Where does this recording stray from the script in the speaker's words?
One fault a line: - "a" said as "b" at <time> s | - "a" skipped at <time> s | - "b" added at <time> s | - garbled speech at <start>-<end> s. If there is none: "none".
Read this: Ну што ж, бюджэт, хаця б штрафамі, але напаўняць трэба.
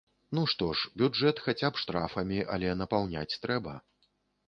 none